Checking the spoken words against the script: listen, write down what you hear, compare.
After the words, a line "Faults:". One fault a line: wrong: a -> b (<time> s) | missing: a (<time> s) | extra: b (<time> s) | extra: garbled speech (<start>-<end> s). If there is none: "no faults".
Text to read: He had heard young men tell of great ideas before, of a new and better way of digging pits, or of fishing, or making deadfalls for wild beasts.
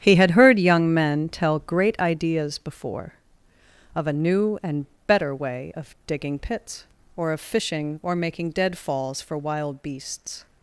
He had heard young men tell great ideas before, of a new and better way of digging pits, or of fishing, or making deadfalls for wild beasts.
Faults:
missing: of (1.6 s)